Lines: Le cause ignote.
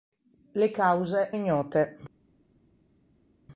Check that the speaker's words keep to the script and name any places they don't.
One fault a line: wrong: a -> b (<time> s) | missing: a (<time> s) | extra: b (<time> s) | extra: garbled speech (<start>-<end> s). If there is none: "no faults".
no faults